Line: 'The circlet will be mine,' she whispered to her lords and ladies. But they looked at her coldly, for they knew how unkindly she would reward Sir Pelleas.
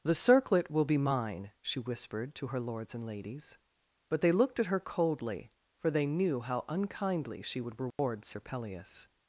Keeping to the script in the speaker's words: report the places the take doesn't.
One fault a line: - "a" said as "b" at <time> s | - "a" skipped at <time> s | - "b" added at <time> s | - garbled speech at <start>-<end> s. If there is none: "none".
none